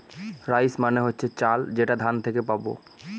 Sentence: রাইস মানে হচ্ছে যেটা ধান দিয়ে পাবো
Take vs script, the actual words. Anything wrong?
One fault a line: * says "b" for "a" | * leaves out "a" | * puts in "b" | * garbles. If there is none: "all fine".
* puts in "চাল"
* says "থেকে" for "দিয়ে"